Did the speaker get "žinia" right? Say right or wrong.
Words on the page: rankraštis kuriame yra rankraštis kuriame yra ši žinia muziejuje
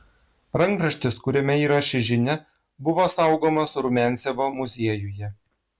wrong